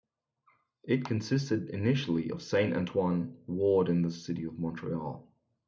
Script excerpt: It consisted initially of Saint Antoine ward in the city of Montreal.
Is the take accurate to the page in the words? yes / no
yes